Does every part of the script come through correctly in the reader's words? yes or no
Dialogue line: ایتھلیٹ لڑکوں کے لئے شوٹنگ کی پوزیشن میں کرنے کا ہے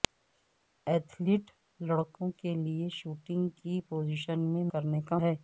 yes